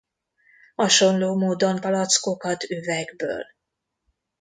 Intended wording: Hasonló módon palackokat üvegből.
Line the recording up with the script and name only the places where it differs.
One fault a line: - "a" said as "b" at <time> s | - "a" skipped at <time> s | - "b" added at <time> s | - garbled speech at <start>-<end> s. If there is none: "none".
none